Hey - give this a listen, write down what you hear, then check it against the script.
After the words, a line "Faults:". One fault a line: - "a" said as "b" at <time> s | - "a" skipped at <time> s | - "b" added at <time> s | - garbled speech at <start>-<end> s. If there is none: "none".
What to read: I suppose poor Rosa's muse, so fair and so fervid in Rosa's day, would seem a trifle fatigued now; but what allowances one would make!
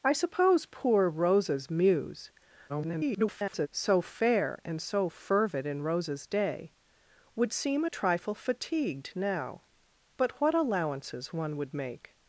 I suppose poor Rosa's muse, [garbled] so fair and so fervid in Rosa's day, would seem a trifle fatigued now; but what allowances one would make!
Faults:
- garbled speech at 2.7-3.7 s